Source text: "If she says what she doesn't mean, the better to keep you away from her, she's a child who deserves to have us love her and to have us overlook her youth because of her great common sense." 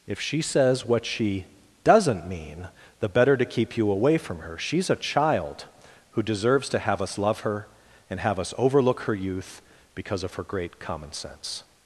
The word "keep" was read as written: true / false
true